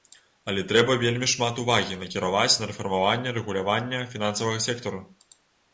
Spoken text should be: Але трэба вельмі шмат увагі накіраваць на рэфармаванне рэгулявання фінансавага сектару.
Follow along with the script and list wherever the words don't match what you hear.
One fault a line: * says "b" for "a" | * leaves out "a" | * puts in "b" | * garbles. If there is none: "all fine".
all fine